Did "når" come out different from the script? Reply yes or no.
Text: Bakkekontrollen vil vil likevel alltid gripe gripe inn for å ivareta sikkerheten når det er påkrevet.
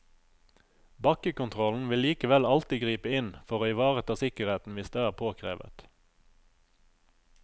yes